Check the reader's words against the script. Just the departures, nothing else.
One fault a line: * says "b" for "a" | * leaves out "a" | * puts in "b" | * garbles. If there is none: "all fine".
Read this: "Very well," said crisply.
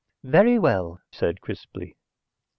all fine